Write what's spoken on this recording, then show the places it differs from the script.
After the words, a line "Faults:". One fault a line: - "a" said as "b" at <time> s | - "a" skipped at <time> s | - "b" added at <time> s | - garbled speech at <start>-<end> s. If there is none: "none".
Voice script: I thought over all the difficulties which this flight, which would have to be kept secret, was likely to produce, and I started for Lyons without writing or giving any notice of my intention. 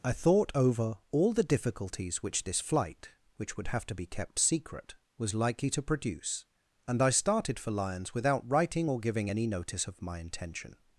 I thought over all the difficulties which this flight, which would have to be kept secret, was likely to produce, and I started for Lyons without writing or giving any notice of my intention.
Faults:
none